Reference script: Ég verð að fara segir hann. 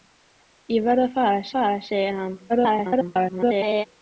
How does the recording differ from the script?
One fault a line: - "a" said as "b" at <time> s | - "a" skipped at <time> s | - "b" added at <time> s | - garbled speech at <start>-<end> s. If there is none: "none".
- "fara" added at 1.6 s
- garbled speech at 2.5-3.9 s